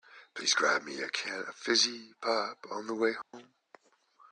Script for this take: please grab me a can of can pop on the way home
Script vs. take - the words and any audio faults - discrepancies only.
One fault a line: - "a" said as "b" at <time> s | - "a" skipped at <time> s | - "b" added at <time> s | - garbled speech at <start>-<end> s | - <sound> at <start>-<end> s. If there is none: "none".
- "can" said as "fizzy" at 1.6 s
- dropout at 3.2-3.3 s